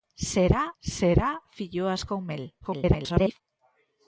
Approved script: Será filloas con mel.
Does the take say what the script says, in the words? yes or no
no